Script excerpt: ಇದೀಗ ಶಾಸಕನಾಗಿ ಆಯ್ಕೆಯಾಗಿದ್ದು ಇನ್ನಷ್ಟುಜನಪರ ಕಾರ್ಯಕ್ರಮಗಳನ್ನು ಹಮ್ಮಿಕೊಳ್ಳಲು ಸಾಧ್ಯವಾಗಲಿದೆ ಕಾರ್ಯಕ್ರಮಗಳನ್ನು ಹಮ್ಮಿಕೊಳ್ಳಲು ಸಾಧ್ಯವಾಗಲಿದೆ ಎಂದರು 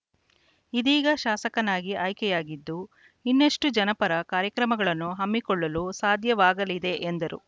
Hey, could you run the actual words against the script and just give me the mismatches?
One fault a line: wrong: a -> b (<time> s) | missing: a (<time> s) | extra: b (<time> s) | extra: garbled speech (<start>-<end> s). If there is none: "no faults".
missing: ಕಾರ್ಯಕ್ರಮಗಳನ್ನು ಹಮ್ಮಿಕೊಳ್ಳಲು ಸಾಧ್ಯವಾಗಲಿದೆ (6.9 s)